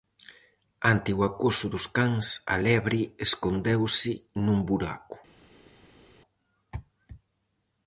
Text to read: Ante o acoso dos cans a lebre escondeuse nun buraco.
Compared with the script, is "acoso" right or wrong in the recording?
right